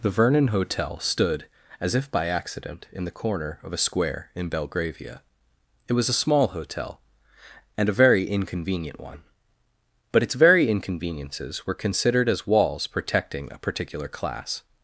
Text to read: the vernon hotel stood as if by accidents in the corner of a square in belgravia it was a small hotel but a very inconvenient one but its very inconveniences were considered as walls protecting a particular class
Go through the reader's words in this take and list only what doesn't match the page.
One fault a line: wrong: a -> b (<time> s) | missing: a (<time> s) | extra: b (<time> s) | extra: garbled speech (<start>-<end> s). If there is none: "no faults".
wrong: accidents -> accident (2.3 s)
wrong: but -> and (7.8 s)